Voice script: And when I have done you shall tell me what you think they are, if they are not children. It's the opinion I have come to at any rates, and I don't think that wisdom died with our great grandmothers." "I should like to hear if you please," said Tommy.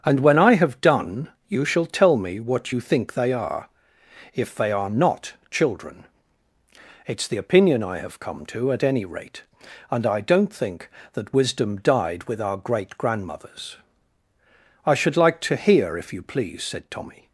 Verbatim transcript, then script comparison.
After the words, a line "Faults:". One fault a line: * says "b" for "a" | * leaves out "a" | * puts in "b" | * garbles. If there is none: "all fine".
And when I have done you shall tell me what you think they are, if they are not children. It's the opinion I have come to at any rate, and I don't think that wisdom died with our great grandmothers." "I should like to hear if you please," said Tommy.
Faults:
* says "rate" for "rates"